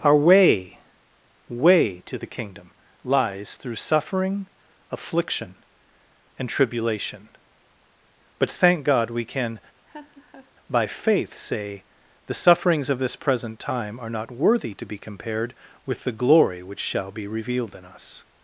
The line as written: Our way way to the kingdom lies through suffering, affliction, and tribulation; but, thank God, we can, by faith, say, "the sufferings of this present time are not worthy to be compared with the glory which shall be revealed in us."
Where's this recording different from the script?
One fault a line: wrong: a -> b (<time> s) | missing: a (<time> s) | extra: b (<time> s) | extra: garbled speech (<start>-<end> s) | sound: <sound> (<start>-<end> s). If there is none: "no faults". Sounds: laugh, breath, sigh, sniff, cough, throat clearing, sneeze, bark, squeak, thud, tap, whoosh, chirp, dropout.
sound: laugh (9.9-10.5 s)